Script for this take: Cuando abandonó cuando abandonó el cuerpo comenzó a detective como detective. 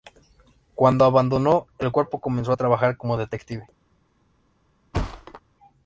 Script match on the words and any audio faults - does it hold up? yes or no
no